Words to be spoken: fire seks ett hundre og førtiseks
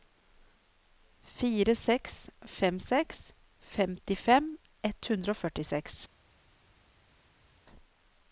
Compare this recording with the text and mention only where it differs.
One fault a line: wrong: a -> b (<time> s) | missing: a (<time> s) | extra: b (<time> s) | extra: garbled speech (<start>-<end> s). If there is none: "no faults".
extra: fem seks femtifem (2.5 s)